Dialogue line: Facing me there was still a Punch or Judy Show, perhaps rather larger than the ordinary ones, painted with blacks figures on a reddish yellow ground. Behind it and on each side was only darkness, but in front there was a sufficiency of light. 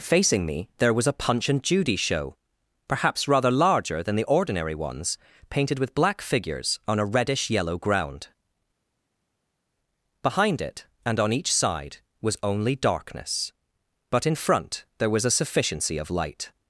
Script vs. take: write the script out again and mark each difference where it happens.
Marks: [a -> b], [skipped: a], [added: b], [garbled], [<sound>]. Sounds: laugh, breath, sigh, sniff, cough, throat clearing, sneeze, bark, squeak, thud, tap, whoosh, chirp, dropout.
Facing me there was [skipped: still] a Punch [or -> and] Judy Show, perhaps rather larger than the ordinary ones, painted with [blacks -> black] figures on a reddish yellow ground. Behind it and on each side was only darkness, but in front there was a sufficiency of light.